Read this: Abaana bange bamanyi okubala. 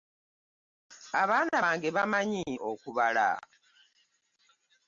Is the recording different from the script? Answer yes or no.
no